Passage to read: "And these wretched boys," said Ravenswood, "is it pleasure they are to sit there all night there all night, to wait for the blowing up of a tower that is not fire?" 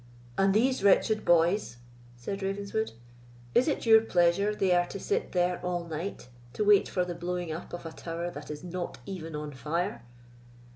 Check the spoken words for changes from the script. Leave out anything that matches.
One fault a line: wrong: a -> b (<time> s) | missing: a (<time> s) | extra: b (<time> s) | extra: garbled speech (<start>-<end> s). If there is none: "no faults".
extra: your (3.9 s)
missing: there all night (6.3 s)
extra: even on (9.1 s)